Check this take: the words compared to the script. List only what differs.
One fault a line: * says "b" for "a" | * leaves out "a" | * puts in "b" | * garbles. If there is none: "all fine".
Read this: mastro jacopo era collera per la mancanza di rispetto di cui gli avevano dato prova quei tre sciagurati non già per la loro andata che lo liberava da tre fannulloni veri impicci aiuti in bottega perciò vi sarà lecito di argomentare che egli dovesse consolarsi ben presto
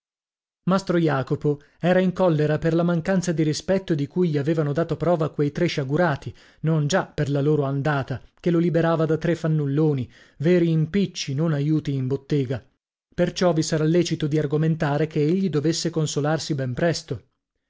* puts in "in"
* puts in "non"